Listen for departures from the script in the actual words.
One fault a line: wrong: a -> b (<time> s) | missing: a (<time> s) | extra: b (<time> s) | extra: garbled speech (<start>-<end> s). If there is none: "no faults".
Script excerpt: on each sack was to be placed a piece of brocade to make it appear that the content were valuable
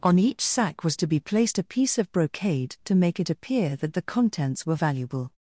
wrong: content -> contents (4.0 s)